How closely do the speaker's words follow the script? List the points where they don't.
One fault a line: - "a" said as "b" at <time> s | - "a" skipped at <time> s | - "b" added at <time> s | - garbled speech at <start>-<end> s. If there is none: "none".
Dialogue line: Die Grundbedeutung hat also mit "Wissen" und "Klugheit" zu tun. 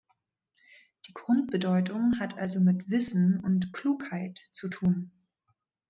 none